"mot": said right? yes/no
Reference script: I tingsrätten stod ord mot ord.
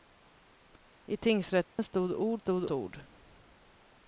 no